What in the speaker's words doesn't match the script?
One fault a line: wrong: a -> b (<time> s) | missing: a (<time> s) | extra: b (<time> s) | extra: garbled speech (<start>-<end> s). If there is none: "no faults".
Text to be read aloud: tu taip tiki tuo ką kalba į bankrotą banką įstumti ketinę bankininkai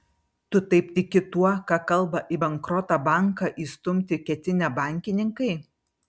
no faults